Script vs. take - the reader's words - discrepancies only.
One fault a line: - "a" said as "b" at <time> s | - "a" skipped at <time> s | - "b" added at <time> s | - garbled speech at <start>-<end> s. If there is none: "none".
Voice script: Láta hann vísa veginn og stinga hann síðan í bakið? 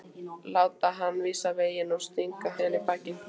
- "hann" skipped at 2.5 s